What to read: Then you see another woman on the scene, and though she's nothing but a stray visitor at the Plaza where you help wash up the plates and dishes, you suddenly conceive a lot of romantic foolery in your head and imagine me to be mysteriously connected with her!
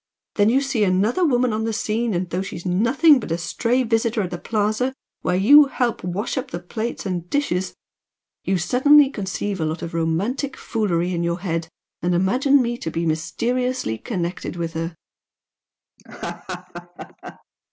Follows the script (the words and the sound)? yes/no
no